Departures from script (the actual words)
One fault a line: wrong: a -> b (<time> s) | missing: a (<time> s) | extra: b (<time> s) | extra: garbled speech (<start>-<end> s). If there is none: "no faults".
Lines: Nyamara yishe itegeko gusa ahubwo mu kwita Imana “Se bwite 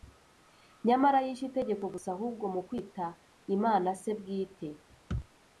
no faults